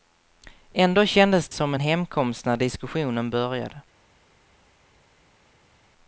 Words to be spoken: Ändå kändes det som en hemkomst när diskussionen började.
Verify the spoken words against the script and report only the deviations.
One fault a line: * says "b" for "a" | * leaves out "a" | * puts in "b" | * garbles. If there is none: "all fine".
* leaves out "det"